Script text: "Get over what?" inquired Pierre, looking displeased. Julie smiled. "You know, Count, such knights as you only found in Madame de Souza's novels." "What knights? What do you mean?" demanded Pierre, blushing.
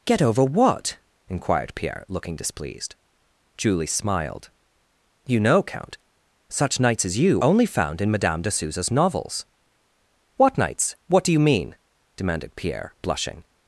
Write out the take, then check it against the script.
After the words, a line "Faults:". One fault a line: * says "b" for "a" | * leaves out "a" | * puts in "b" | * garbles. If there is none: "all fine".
"Get over what?" inquired Pierre, looking displeased. Julie smiled. "You know, Count, such knights as you only found in Madame de Souza's novels." "What knights? What do you mean?" demanded Pierre, blushing.
Faults:
all fine